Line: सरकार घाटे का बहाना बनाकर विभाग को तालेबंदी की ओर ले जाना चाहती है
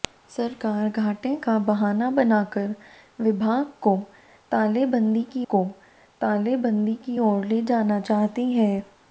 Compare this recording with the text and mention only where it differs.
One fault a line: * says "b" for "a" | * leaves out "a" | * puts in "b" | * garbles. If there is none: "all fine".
* puts in "को तालेबंदी की"